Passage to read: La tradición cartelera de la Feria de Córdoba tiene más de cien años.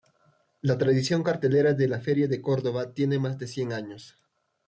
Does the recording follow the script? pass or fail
pass